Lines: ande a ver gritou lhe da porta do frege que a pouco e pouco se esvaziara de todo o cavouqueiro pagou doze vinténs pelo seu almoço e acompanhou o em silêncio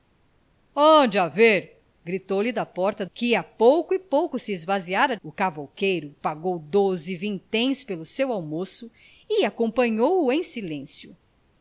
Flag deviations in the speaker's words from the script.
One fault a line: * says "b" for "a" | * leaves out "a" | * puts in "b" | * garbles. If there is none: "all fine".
* leaves out "do frege"
* leaves out "de todo"